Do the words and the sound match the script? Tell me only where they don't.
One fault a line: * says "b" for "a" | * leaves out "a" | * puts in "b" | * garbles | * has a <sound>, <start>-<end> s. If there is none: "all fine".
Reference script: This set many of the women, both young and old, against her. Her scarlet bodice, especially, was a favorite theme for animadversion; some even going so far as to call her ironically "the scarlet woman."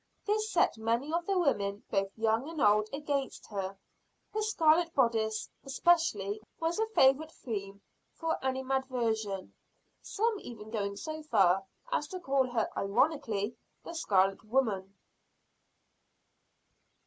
all fine